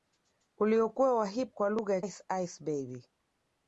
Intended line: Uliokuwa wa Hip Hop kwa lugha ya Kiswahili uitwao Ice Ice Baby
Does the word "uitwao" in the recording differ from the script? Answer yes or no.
yes